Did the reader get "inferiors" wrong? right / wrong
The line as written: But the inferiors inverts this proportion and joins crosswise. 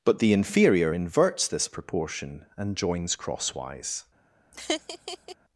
wrong